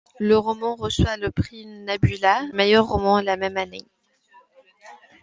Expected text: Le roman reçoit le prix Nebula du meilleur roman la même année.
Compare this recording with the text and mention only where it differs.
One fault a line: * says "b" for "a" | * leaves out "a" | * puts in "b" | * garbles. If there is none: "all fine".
* leaves out "du"